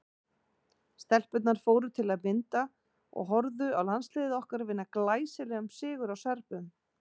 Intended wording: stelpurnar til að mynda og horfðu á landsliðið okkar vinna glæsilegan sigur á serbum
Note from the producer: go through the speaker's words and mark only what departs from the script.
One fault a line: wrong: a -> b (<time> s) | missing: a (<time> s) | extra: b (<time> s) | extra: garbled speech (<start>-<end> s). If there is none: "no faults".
extra: fóru (1.6 s)